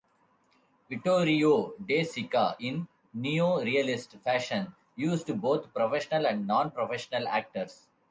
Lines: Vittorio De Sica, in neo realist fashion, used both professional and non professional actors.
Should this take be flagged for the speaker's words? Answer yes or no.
no